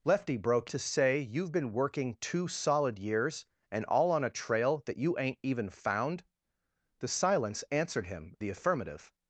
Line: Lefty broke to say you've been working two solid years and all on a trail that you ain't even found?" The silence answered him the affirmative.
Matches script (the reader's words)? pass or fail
pass